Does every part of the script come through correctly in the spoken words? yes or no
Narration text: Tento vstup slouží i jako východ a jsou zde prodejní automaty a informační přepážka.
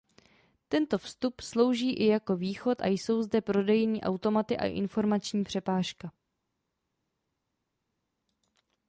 yes